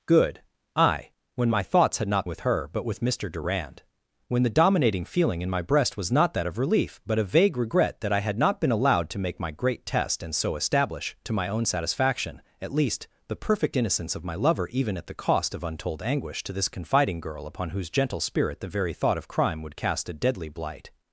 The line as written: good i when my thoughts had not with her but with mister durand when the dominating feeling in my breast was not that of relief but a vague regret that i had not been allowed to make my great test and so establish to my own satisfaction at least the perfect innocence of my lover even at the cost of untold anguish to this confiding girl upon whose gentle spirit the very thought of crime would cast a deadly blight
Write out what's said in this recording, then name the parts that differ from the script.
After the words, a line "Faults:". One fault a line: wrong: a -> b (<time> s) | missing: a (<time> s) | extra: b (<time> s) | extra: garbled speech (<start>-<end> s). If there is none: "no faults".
good i when my thoughts had not with her but with mister durand when the dominating feeling in my breast was not that of relief but a vague regret that i had not been allowed to make my great test and so establish to my own satisfaction at least the perfect innocence of my lover even at the cost of untold anguish to this confiding girl upon whose gentle spirit the very thought of crime would cast a deadly blight
Faults:
no faults